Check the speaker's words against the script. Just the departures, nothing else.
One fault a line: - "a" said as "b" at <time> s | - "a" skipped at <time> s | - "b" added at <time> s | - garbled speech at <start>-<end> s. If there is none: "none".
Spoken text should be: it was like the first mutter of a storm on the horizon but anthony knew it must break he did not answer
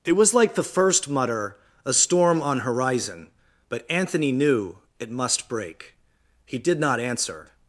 - "of" skipped at 1.6 s
- "the" skipped at 2.6 s